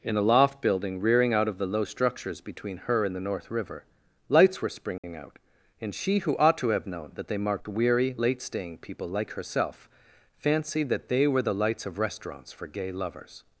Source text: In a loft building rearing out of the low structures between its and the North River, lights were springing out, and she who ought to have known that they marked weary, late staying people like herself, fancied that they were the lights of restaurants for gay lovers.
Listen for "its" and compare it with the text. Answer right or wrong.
wrong